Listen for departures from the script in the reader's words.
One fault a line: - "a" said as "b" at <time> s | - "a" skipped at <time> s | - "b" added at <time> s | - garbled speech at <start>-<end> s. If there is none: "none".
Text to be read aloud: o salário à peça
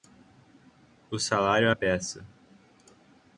none